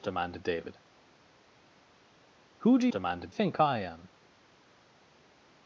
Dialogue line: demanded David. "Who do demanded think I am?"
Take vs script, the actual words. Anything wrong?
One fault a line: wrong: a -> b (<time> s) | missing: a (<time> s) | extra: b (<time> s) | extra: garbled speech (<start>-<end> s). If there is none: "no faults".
no faults